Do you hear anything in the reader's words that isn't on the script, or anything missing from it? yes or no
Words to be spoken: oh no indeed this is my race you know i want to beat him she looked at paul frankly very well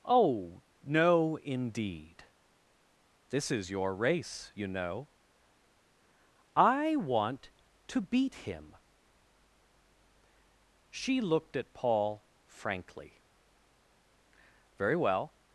yes